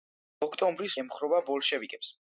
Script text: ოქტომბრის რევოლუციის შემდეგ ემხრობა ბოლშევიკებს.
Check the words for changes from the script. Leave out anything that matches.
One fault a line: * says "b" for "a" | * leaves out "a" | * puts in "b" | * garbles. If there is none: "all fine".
* leaves out "რევოლუციის შემდეგ"